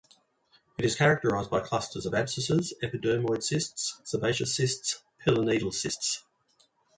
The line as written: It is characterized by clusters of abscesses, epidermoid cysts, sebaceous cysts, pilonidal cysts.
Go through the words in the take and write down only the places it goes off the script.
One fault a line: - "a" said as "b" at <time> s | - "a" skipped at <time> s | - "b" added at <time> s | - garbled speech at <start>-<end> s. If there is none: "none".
none